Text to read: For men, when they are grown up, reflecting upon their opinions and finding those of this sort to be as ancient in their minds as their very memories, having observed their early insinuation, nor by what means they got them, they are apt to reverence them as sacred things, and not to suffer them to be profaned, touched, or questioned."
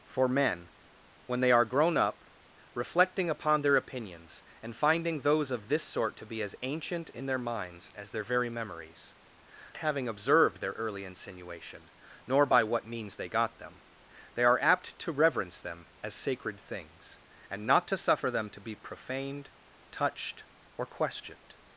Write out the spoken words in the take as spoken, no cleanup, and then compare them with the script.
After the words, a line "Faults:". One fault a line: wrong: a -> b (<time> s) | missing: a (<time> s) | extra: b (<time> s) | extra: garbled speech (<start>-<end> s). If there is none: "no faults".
For men, when they are grown up, reflecting upon their opinions and finding those of this sort to be as ancient in their minds as their very memories, having observed their early insinuation, nor by what means they got them, they are apt to reverence them as sacred things, and not to suffer them to be profaned, touched, or questioned."
Faults:
no faults